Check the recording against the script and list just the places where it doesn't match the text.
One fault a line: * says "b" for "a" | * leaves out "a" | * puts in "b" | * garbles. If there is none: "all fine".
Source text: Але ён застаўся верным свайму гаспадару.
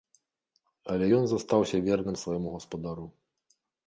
all fine